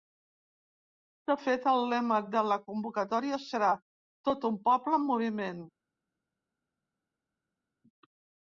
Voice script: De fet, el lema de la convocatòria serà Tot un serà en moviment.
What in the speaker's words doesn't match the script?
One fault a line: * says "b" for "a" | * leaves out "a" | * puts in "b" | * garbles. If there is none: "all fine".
* says "poble" for "serà"